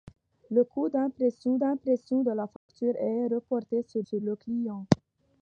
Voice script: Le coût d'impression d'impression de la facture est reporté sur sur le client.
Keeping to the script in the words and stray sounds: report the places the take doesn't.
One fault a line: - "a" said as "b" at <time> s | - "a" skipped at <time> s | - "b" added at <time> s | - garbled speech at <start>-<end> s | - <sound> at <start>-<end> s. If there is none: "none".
- dropout at 2.6-2.7 s